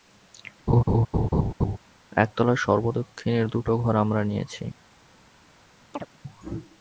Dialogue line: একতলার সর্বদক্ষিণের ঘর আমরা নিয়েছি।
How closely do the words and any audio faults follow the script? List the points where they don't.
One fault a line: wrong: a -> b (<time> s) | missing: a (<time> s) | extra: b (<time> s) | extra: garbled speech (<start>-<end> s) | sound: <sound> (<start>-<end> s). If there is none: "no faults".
sound: laugh (0.7-1.8 s)
extra: দুটো (3.5 s)
sound: chirp (5.9-6.1 s)